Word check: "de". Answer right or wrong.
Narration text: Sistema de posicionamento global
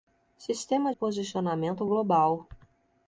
wrong